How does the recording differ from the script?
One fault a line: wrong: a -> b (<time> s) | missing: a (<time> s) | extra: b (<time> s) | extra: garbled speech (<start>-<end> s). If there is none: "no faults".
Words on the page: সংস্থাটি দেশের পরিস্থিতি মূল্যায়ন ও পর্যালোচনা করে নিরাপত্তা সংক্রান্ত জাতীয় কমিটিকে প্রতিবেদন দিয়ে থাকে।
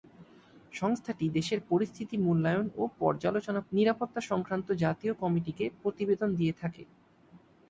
missing: করে (3.6 s)